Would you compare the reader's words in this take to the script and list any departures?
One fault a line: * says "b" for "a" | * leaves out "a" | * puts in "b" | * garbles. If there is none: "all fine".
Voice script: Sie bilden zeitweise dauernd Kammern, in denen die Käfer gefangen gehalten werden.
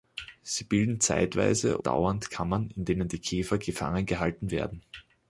all fine